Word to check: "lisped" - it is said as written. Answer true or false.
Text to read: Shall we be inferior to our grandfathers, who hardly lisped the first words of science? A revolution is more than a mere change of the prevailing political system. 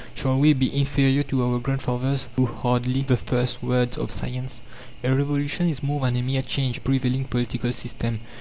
false